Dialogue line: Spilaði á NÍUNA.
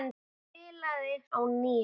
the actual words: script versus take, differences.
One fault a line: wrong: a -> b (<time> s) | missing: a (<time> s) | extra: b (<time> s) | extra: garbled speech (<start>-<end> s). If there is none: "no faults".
no faults